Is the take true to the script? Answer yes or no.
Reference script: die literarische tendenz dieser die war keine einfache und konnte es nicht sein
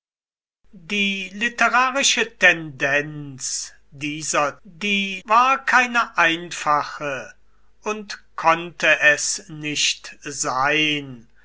yes